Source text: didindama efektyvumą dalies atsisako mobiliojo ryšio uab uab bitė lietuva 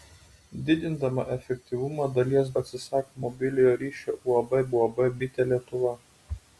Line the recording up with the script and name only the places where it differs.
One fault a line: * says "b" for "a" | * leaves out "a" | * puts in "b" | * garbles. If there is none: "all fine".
all fine